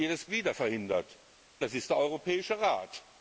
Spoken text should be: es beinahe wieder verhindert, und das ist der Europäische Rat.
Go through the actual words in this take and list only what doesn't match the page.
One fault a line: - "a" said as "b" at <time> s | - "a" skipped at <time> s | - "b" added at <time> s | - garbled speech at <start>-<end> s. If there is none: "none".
- "beinahe" skipped at 0.2 s
- "und" skipped at 1.2 s